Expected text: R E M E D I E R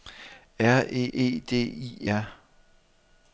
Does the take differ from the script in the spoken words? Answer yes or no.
yes